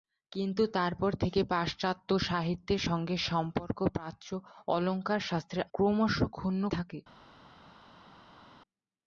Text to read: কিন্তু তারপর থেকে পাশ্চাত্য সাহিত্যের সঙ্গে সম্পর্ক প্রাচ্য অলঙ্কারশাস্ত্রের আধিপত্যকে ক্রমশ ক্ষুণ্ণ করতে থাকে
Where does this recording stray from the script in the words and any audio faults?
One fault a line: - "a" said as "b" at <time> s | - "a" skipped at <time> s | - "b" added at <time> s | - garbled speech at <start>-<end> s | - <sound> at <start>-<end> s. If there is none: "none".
- "আধিপত্যকে" skipped at 5.6 s
- "করতে" skipped at 6.6 s